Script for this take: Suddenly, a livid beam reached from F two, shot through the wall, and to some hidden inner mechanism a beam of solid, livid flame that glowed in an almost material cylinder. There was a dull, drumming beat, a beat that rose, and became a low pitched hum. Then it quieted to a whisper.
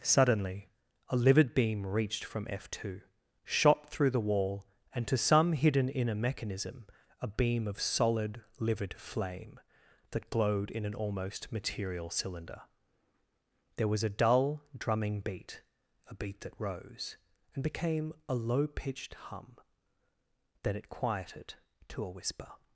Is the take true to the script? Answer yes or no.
yes